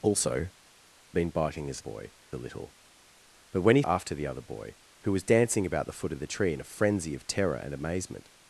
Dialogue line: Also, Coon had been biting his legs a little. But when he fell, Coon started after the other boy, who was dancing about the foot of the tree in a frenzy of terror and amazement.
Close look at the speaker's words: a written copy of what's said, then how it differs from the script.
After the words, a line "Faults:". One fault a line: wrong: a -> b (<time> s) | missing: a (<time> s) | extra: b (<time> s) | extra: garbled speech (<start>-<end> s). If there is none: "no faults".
Also, Been biting his boy a little. But when he after the other boy, who was dancing about the foot of the tree in a frenzy of terror and amazement.
Faults:
missing: Coon had (0.5 s)
wrong: legs -> boy (1.8 s)
missing: fell Coon started (3.8 s)